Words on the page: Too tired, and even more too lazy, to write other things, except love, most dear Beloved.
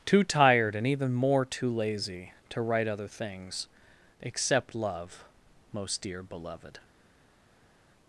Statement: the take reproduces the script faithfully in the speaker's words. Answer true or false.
true